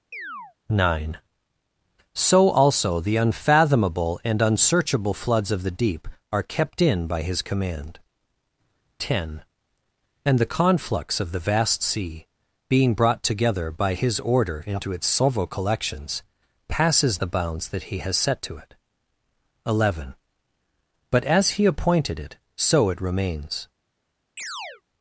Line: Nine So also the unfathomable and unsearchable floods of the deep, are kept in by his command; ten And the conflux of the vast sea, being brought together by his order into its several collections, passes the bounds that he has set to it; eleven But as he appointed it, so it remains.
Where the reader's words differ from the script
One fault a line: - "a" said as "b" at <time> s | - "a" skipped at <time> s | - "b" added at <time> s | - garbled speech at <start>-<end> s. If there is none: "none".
none